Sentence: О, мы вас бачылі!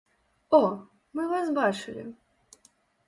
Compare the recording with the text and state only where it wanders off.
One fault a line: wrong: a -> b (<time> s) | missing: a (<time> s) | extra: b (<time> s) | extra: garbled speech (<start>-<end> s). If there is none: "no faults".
no faults